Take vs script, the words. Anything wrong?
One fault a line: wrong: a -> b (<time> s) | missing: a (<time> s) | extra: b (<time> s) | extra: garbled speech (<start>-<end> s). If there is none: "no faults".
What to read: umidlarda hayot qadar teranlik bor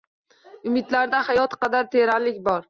no faults